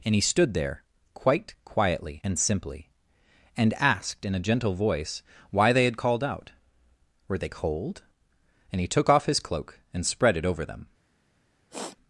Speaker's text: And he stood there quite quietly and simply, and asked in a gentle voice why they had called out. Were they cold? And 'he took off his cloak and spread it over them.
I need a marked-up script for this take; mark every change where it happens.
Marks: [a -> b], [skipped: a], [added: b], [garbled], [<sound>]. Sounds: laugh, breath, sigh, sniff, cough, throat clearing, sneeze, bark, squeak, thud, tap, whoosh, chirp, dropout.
And he stood there quite quietly and simply, and asked in a gentle voice why they had called out. Were they cold? And 'he took off his cloak and spread it over them. [sniff]